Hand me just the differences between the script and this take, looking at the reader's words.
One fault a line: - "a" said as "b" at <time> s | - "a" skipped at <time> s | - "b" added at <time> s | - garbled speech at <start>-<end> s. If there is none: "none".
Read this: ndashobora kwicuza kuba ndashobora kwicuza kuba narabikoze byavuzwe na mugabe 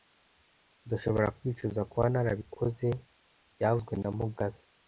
- "ndashobora kwicuza kuba" skipped at 2.1 s